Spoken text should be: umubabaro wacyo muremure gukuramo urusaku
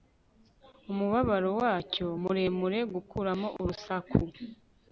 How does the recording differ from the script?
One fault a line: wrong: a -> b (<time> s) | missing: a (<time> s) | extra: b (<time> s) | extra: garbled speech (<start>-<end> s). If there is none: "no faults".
no faults